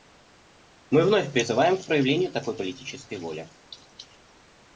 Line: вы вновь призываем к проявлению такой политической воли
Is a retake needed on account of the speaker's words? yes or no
yes